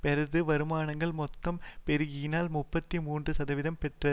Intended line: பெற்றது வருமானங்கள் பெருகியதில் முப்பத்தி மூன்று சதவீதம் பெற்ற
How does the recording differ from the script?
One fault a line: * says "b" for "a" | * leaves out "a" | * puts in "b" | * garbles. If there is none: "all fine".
* puts in "மொத்தம்"